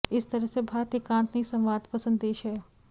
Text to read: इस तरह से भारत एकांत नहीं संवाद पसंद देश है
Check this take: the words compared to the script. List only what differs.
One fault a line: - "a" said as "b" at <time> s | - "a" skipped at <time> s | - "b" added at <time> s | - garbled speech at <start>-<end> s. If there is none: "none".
none